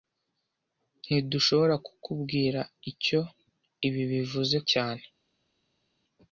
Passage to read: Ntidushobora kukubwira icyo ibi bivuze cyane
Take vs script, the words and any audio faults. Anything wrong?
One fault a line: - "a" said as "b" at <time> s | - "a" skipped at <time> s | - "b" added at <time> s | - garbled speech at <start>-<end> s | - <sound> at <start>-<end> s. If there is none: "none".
none